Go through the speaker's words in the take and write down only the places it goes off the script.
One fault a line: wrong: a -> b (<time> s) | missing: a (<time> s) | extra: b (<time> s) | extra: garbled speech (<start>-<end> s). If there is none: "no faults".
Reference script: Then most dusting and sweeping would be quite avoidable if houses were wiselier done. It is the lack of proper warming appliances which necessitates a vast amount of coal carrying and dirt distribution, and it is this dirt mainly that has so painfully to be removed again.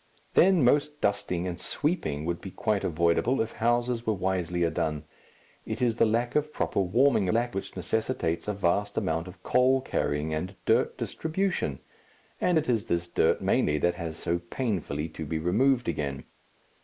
wrong: appliances -> lack (7.3 s)